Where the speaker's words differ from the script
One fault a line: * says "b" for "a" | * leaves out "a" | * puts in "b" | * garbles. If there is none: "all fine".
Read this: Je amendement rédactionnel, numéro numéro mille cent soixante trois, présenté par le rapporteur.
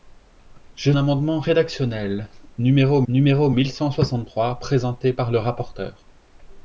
all fine